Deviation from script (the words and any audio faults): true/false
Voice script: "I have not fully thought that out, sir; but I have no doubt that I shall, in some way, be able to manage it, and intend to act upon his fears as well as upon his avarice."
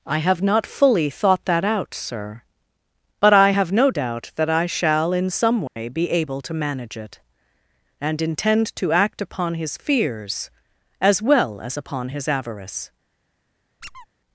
true